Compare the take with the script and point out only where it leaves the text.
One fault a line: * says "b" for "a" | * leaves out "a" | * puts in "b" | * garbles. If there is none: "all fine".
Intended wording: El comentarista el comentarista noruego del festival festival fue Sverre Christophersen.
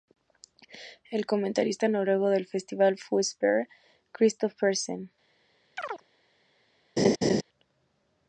* leaves out "el comentarista"
* leaves out "festival"